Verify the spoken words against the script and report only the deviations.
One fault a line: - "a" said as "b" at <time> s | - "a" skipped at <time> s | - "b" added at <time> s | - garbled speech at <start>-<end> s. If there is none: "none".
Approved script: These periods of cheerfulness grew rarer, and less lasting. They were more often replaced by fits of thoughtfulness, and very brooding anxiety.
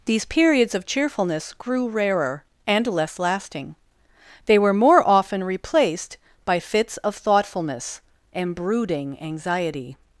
- "very" skipped at 8.6 s